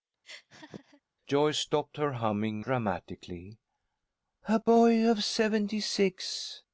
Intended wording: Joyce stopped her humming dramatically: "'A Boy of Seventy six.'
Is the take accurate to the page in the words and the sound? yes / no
no